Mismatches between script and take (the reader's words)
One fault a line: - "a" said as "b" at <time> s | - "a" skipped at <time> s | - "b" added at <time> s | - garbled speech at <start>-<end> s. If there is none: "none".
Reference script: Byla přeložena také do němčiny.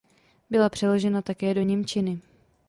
none